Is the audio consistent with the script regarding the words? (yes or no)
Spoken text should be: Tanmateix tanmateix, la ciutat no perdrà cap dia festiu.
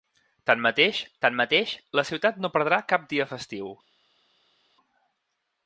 yes